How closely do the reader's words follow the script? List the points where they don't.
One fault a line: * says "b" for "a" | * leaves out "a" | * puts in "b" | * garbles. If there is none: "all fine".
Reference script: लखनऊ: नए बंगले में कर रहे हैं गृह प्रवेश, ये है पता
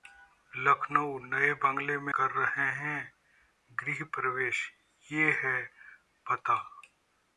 all fine